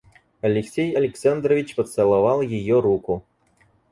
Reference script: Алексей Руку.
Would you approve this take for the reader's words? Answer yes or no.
no